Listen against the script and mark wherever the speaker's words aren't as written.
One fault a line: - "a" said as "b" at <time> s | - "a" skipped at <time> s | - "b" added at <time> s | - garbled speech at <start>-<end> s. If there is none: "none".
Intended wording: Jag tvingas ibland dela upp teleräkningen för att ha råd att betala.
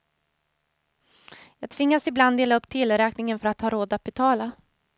none